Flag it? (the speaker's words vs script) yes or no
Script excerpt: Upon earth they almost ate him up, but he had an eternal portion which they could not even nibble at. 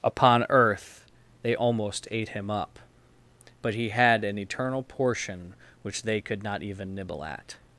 no